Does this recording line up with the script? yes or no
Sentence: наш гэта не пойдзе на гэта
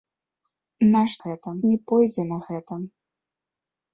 yes